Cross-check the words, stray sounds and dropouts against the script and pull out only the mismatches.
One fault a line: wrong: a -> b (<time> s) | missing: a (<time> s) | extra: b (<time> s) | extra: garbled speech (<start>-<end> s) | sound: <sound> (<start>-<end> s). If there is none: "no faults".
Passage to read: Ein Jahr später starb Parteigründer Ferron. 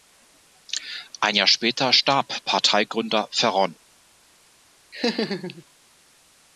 sound: laugh (4.9-5.6 s)